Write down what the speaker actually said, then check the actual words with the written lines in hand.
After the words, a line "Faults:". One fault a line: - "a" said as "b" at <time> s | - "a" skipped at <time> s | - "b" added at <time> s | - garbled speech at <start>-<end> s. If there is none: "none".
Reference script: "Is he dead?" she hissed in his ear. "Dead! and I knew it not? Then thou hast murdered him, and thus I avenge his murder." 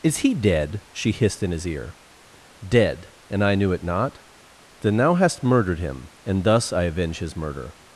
"Is he dead?" she hissed in his ear. "Dead! and I knew it not? Then thou hast murdered him, and thus I avenge his murder."
Faults:
none